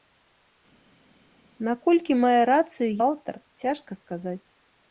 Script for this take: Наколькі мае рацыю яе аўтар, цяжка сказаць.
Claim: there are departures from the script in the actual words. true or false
true